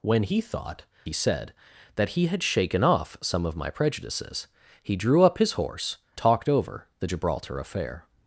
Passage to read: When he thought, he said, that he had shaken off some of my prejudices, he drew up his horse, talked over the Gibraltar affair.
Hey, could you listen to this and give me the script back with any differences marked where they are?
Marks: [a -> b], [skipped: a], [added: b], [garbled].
When he thought, he said, that he had shaken off some of my prejudices, he drew up his horse, talked over the Gibraltar affair.